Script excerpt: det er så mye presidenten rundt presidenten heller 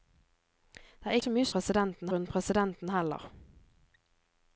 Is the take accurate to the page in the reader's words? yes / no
yes